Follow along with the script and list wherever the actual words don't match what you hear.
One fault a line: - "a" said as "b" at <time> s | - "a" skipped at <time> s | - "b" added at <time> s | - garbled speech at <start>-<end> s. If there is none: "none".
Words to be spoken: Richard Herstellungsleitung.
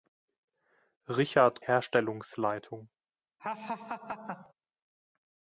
none